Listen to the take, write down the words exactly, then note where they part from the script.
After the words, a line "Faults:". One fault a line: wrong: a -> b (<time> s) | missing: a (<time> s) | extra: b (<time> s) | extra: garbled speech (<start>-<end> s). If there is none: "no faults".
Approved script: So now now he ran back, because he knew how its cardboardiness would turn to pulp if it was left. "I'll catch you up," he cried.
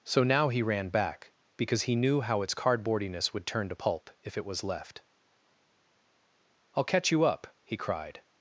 So now he ran back, because he knew how its cardboardiness would turn to pulp if it was left. "I'll catch you up," he cried.
Faults:
missing: now (0.5 s)